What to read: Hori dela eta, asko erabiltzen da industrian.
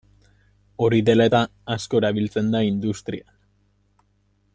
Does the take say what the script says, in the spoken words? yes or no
yes